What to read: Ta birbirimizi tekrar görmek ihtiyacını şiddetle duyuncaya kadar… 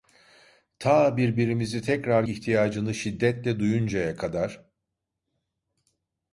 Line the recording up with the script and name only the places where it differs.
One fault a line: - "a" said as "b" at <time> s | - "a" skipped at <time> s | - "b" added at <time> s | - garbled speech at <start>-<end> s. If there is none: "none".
- "görmek" skipped at 2.2 s